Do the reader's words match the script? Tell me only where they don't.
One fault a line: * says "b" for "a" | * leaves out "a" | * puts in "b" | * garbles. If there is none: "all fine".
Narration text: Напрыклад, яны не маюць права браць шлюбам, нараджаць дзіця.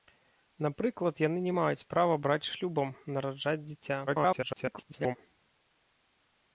* garbles